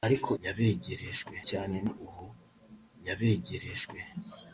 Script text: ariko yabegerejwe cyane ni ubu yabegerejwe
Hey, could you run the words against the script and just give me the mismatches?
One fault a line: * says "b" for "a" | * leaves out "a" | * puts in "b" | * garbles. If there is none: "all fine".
all fine